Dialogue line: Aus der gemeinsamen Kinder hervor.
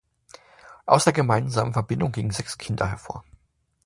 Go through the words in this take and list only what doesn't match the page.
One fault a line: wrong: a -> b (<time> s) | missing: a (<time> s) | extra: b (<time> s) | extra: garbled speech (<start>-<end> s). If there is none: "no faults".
extra: Verbindung gingen sechs (1.7 s)